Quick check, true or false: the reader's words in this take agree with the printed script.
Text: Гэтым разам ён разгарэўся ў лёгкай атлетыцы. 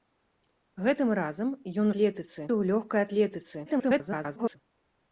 false